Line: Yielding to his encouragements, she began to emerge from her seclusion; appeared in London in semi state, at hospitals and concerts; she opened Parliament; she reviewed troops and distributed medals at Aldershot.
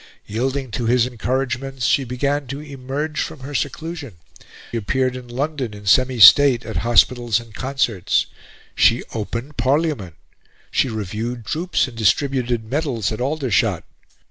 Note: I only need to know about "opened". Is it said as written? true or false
true